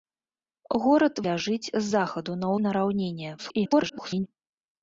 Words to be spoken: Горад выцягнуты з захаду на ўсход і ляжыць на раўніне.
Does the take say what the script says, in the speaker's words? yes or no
no